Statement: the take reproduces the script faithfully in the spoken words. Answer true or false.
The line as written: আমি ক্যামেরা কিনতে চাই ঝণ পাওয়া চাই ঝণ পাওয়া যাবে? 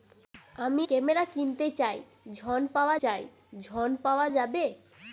true